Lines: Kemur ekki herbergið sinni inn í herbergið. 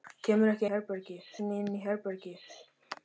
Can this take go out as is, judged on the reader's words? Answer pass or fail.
pass